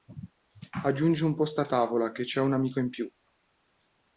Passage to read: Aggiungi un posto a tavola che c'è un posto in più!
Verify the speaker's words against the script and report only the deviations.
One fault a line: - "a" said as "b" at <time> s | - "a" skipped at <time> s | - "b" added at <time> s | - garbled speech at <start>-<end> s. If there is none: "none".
- "posto" said as "amico" at 2.5 s